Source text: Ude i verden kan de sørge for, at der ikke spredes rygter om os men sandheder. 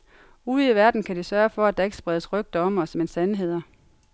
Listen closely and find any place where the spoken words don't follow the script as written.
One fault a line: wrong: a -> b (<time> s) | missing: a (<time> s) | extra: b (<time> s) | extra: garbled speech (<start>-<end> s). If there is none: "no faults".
no faults